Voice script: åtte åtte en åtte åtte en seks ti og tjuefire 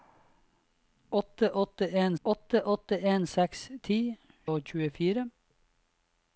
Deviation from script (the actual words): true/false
false